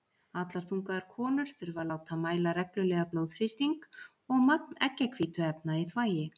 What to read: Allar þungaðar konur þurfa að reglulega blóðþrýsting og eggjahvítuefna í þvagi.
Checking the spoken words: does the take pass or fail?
fail